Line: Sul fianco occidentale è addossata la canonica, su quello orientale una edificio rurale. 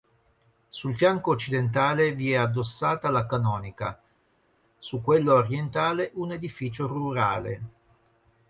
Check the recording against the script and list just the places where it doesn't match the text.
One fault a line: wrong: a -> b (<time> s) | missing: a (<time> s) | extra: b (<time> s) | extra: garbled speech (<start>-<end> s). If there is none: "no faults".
extra: vi (2.1 s)
wrong: una -> un (6.2 s)